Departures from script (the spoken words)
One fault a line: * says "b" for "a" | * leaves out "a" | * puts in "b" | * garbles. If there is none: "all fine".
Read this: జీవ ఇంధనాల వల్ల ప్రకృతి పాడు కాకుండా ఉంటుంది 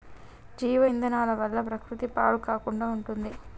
all fine